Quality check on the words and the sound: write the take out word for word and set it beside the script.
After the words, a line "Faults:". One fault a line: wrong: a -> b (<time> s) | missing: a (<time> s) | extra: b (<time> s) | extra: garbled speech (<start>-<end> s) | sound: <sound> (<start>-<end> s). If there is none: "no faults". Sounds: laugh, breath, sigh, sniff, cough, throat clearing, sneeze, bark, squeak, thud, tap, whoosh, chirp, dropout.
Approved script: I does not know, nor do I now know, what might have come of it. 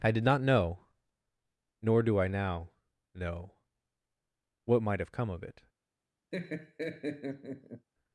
I did not know, nor do I now know, what might have come of it.
Faults:
wrong: does -> did (0.1 s)
sound: laugh (6.3-7.9 s)